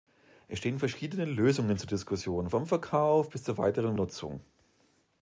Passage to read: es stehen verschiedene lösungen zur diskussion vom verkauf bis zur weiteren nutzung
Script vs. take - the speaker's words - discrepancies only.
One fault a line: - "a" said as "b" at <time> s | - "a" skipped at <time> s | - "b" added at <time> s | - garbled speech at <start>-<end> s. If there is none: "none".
none